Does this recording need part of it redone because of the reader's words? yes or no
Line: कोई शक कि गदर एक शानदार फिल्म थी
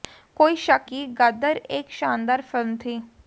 no